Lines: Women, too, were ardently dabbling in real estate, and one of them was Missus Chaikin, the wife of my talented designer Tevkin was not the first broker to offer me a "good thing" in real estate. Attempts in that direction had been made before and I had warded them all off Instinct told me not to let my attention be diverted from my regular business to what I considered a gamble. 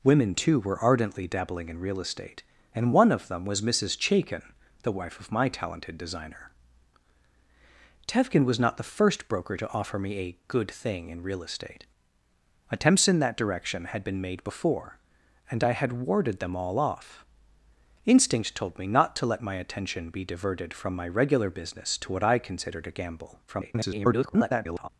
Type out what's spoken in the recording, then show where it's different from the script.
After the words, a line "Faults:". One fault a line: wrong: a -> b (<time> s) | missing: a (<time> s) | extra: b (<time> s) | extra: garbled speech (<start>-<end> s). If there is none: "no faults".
Women, too, were ardently dabbling in real estate, and one of them was Missus Chaikin, the wife of my talented designer Tevkin was not the first broker to offer me a "good thing" in real estate. Attempts in that direction had been made before and I had warded them all off Instinct told me not to let my attention be diverted from my regular business to what I considered a gamble. [garbled]
Faults:
extra: garbled speech (23.5-24.9 s)